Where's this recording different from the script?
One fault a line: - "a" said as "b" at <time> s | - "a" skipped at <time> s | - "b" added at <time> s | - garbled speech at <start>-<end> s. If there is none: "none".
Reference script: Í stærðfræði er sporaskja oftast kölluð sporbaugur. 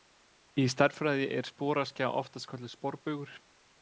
none